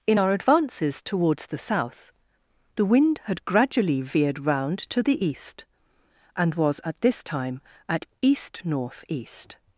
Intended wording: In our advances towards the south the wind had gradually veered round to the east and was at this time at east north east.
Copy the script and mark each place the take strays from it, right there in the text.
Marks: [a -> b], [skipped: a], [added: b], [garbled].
In our advances towards the south the wind had gradually veered round to the east and was at this time at east north east.